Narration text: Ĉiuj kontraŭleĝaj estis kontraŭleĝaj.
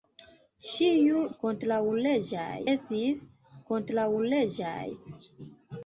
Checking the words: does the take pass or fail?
pass